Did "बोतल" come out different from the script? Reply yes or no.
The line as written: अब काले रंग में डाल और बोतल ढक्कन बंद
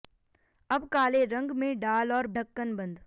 yes